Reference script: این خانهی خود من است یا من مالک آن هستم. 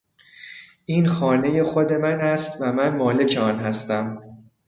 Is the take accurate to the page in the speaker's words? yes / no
no